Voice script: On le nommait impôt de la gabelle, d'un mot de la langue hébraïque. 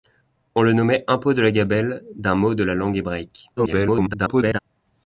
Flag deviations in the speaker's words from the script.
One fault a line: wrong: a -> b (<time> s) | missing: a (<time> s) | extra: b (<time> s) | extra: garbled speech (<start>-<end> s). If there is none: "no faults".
extra: garbled speech (3.6-4.6 s)